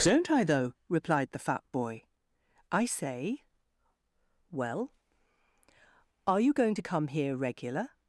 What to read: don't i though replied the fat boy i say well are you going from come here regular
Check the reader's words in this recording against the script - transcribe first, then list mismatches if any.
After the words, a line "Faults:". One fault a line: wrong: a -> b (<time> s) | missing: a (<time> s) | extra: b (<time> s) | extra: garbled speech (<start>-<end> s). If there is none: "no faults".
don't i though replied the fat boy i say well are you going to come here regular
Faults:
wrong: from -> to (6.7 s)